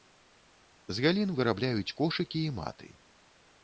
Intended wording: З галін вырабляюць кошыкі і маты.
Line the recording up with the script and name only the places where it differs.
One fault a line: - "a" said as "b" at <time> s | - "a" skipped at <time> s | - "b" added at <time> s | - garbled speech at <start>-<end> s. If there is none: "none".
none